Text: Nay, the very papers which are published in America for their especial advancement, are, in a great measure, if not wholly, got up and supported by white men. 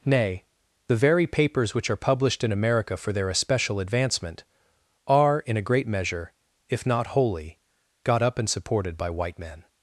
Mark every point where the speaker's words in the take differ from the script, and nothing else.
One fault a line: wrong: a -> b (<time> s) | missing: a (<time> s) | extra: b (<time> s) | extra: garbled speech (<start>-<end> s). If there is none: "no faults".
no faults